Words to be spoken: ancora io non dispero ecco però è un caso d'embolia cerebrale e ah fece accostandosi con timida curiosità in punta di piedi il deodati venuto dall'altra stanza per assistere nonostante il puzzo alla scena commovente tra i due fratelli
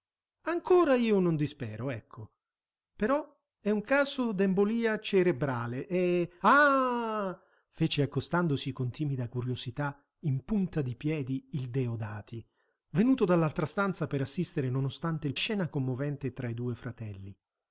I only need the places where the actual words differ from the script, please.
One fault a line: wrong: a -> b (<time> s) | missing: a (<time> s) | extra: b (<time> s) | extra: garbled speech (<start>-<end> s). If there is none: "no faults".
missing: puzzo alla (15.4 s)